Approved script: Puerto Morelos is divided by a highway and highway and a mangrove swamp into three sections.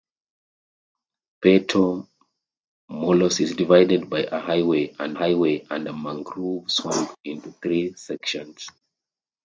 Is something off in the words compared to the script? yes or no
no